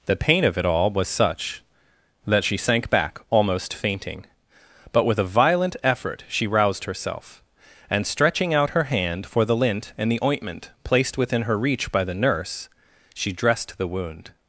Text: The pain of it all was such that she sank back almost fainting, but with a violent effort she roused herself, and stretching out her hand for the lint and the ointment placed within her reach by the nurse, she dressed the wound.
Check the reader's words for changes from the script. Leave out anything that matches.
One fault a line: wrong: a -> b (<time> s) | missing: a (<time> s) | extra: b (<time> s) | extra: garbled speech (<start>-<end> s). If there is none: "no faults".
no faults